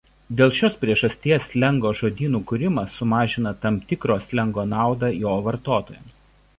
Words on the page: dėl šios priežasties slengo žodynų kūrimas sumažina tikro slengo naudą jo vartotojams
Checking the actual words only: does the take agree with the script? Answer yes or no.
no